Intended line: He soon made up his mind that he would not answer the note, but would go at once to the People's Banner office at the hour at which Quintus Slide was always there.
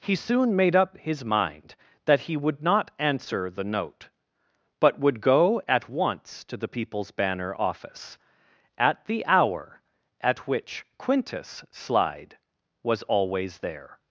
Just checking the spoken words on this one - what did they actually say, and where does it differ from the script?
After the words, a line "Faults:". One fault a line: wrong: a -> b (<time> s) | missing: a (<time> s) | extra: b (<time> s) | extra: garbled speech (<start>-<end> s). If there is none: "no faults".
He soon made up his mind that he would not answer the note, but would go at once to the People's Banner office at the hour at which Quintus Slide was always there.
Faults:
no faults